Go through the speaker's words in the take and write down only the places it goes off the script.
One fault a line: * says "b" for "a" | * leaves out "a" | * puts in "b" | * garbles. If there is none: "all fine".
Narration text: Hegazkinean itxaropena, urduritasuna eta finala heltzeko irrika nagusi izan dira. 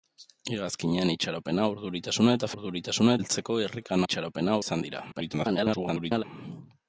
* says "urduritasuna" for "finala"
* says "itxaropena" for "nagusi"
* garbles